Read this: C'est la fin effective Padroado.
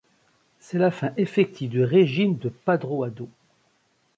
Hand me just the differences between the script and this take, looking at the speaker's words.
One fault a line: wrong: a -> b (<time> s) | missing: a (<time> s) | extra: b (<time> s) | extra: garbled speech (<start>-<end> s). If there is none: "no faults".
extra: du régime de (1.7 s)